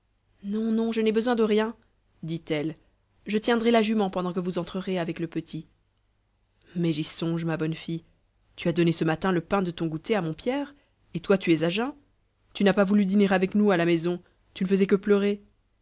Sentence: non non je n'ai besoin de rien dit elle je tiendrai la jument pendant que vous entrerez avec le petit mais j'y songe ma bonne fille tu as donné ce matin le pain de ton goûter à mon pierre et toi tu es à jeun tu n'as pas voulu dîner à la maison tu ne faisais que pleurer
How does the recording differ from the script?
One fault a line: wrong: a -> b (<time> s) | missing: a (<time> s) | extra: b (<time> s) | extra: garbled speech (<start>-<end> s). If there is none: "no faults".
extra: avec nous (13.3 s)